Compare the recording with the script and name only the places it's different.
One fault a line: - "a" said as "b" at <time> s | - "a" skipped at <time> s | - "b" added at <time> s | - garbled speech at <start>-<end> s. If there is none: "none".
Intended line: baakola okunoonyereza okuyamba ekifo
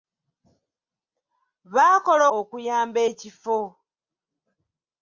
- "okunoonyereza" skipped at 2.2 s